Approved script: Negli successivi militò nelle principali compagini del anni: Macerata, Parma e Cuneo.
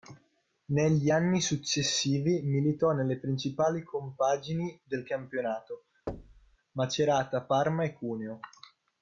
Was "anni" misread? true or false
true